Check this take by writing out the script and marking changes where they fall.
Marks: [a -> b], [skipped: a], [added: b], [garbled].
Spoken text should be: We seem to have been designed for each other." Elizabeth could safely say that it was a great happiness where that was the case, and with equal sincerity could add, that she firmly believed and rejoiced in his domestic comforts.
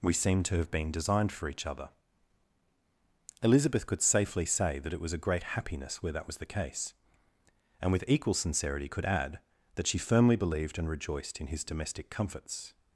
We seem to have been designed for each other." Elizabeth could safely say that it was a great happiness where that was the case, and with equal sincerity could add, that she firmly believed and rejoiced in his domestic comforts.